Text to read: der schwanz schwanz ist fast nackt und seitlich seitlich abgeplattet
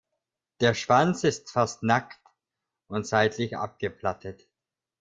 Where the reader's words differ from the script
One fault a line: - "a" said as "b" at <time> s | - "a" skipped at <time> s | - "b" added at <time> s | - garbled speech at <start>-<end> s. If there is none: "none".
- "schwanz" skipped at 1.2 s
- "seitlich" skipped at 3.6 s